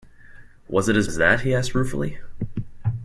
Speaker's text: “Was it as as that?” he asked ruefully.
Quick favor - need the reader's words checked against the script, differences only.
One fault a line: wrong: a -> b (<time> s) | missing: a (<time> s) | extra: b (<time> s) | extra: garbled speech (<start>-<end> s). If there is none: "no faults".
no faults